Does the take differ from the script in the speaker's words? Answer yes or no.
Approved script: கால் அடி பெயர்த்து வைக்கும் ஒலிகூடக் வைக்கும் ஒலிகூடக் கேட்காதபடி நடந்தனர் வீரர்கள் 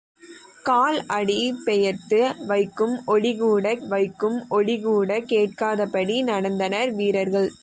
no